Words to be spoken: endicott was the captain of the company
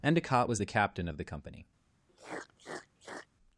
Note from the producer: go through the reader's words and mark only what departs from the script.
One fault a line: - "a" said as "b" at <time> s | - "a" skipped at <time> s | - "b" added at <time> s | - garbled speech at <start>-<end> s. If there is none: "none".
none